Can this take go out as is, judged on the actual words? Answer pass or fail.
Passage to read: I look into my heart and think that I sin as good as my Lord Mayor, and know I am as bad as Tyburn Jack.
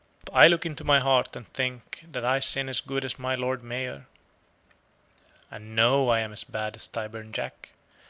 pass